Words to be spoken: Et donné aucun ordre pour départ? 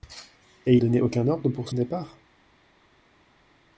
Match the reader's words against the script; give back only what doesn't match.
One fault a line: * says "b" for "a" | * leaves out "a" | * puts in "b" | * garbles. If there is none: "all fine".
all fine